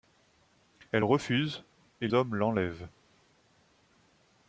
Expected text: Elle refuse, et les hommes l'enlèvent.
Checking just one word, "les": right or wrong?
wrong